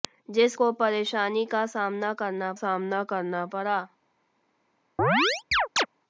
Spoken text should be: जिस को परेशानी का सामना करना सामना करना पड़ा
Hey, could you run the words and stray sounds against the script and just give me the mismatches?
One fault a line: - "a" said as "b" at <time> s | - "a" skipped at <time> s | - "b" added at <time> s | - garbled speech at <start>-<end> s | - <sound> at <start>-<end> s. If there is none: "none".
- chirp at 5.0-5.9 s